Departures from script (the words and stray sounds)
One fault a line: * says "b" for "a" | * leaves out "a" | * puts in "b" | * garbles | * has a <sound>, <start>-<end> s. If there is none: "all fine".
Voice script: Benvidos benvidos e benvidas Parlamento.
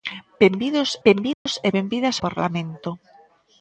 * has a dropout, 1.3-1.5 s